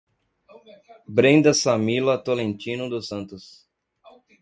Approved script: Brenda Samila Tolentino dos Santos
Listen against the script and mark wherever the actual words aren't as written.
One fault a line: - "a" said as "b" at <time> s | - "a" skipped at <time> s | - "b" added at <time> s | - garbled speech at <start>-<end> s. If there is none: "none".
none